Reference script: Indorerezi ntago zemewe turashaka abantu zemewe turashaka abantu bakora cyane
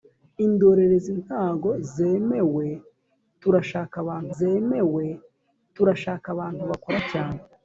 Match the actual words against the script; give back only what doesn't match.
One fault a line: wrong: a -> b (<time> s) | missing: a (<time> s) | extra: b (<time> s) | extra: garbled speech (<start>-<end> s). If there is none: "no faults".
no faults